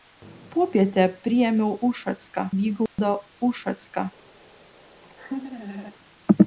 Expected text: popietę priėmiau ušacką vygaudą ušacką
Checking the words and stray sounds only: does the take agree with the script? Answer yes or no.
no